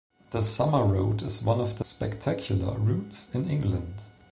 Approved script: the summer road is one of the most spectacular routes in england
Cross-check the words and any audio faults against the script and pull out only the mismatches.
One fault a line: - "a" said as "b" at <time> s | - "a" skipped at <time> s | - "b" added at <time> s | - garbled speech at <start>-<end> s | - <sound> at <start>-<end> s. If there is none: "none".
- "most" skipped at 1.9 s